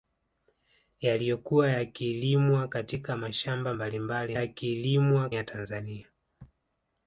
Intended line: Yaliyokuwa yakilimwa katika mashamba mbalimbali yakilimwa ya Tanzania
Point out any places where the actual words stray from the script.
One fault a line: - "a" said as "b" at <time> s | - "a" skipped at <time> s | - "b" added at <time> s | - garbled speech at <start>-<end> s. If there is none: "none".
none